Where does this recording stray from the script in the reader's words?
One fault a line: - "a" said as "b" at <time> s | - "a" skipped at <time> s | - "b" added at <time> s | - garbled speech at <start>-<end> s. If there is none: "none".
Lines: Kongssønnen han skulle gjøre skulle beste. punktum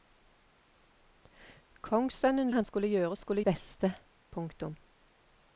none